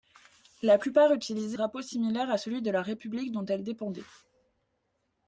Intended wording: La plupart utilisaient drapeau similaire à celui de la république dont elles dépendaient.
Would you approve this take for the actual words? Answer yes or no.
yes